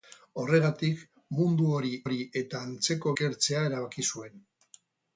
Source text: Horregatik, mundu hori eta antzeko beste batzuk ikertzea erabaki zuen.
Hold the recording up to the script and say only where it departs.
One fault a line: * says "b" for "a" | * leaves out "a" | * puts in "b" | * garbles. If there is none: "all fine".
* puts in "hori"
* leaves out "beste batzuk"